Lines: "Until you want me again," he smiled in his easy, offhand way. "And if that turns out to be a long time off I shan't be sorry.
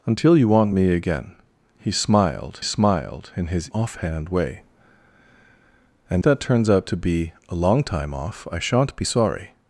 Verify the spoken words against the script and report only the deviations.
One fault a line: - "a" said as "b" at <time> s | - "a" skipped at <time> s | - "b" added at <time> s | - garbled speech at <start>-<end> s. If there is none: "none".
- "smiled" added at 2.6 s
- "easy" skipped at 3.7 s
- "if" skipped at 6.2 s